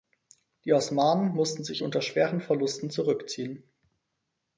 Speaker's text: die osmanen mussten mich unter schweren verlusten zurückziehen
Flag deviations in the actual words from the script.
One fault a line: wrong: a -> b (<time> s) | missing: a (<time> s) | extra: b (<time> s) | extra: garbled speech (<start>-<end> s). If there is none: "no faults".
wrong: mich -> sich (1.6 s)